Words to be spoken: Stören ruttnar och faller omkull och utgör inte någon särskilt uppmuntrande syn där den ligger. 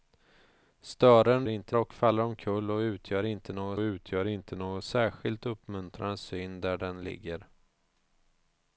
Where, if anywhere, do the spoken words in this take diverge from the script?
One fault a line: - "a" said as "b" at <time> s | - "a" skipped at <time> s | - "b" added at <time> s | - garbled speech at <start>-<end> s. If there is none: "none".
- "ruttnar" said as "inte" at 1.5 s
- "utgör inte någon" added at 3.8 s